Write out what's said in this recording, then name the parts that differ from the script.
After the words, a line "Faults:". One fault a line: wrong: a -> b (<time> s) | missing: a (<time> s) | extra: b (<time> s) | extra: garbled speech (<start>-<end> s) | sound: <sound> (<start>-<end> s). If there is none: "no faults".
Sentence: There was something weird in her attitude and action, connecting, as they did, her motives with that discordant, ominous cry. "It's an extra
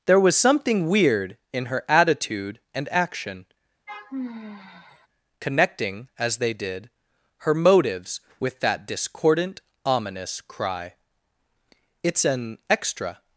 There was something weird in her attitude and action, connecting, as they did, her motives with that discordant, ominous cry. "It's an extra
Faults:
sound: sigh (3.9-5.1 s)